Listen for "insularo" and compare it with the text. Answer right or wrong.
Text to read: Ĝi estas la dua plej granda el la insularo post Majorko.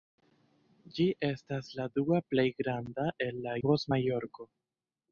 wrong